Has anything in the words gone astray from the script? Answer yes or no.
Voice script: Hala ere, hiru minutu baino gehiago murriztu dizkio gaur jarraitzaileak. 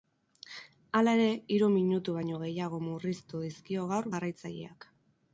no